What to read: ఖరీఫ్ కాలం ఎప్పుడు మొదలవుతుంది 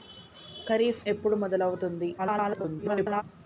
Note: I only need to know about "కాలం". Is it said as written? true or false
false